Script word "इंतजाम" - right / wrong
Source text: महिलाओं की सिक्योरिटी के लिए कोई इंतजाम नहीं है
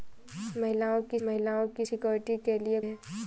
wrong